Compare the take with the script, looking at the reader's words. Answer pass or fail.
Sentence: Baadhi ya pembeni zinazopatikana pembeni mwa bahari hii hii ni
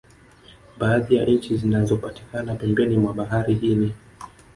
fail